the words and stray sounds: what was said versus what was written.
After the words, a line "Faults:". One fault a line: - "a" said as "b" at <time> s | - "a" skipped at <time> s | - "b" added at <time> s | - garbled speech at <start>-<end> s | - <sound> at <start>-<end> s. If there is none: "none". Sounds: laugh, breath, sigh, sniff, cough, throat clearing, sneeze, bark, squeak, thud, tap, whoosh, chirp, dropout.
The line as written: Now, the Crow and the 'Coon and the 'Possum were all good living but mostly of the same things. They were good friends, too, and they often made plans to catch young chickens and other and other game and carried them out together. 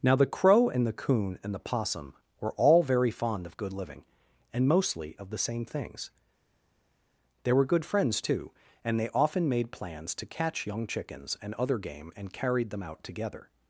Now, the Crow and the 'Coon and the 'Possum were all very fond of good living and mostly of the same things. They were good friends, too, and they often made plans to catch young chickens and other game and carried them out together.
Faults:
- "very fond of" added at 2.8 s
- "but" said as "and" at 4.5 s
- "and other" skipped at 11.8 s